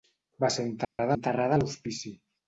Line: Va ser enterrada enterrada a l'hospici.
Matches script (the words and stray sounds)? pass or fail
fail